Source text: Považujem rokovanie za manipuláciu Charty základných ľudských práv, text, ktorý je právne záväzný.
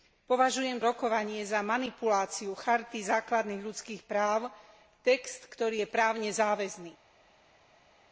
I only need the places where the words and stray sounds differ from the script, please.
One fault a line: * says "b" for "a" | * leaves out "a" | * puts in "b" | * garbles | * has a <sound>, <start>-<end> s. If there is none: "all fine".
all fine